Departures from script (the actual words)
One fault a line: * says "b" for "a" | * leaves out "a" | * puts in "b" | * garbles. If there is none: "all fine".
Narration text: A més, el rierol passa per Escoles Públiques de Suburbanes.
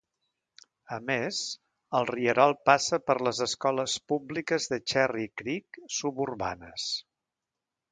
* puts in "les"
* puts in "Cherry Creek"